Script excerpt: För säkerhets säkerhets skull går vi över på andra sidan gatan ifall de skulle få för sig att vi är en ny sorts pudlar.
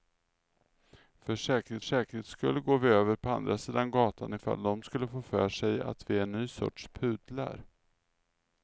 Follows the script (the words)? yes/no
yes